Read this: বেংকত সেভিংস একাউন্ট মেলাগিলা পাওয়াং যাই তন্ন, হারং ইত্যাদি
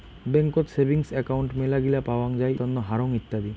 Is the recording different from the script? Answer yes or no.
no